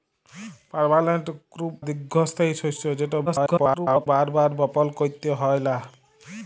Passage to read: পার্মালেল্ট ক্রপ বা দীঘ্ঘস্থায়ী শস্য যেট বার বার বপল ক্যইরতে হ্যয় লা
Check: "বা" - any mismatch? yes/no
yes